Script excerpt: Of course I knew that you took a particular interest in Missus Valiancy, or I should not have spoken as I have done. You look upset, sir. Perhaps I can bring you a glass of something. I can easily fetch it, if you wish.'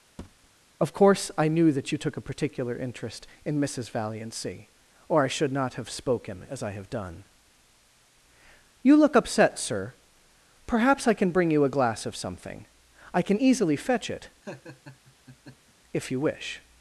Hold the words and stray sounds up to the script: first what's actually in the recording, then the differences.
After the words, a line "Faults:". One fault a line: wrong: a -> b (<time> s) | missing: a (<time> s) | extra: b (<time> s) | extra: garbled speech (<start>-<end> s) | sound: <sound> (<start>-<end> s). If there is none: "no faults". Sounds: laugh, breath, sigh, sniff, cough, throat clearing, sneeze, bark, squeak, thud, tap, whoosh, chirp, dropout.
Of course I knew that you took a particular interest in Missus Valiancy, or I should not have spoken as I have done. You look upset, sir. Perhaps I can bring you a glass of something. I can easily fetch it, if you wish.'
Faults:
sound: thud (0.2-0.5 s)
sound: laugh (14.4-15.7 s)